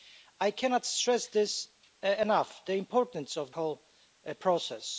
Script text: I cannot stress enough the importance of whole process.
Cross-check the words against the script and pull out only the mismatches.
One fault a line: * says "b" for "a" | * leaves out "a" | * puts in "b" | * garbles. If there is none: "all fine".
all fine